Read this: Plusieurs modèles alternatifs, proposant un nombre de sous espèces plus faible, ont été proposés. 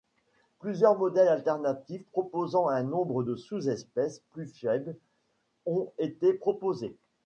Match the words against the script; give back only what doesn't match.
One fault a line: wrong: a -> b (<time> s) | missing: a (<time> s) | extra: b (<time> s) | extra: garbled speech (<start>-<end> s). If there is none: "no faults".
no faults